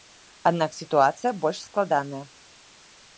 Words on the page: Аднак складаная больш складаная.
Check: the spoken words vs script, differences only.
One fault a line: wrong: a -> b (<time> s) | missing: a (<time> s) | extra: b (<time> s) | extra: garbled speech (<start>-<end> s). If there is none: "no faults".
wrong: складаная -> сітуацыя (0.8 s)